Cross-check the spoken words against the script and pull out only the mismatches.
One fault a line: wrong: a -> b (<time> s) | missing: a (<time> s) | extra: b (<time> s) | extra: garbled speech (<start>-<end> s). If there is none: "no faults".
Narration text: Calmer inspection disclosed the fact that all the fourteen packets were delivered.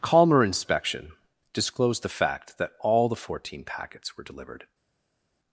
no faults